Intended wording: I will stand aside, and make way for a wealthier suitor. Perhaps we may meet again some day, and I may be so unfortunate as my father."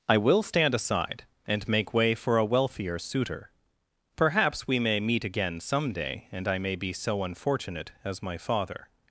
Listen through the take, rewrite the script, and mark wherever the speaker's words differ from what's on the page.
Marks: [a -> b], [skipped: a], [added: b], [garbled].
I will stand aside, and make way for a wealthier suitor. Perhaps we may meet again some day, and I may be so unfortunate as my father."